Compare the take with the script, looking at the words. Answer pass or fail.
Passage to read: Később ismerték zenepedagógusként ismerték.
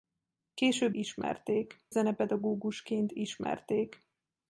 pass